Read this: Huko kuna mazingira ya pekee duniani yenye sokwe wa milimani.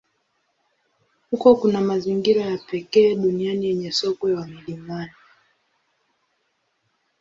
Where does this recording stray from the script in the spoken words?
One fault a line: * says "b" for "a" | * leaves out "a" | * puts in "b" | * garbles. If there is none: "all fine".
all fine